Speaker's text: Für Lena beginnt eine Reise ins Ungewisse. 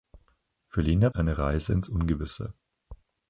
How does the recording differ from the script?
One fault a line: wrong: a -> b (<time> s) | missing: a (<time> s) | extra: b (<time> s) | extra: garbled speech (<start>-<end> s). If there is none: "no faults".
missing: beginnt (1.1 s)